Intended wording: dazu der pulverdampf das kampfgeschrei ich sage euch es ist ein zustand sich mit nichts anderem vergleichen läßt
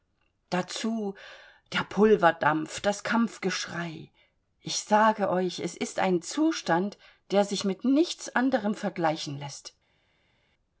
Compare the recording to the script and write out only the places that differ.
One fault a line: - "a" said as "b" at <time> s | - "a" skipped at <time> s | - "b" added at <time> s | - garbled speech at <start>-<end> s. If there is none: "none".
- "der" added at 7.3 s